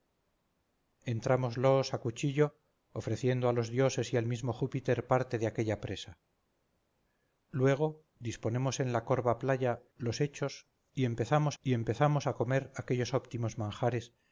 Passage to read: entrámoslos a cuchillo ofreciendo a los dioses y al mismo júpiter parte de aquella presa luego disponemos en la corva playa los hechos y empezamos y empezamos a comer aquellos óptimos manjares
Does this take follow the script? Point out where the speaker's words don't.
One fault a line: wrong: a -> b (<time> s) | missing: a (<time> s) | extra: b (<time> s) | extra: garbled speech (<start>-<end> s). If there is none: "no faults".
no faults